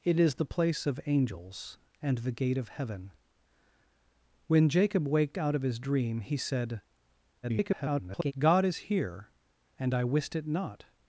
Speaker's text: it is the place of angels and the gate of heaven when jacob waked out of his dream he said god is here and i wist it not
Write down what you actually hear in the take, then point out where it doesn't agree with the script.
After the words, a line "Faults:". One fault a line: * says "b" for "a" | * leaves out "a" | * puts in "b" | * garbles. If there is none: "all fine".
it is the place of angels and the gate of heaven when jacob waked out of his dream he said [garbled] god is here and i wist it not
Faults:
* garbles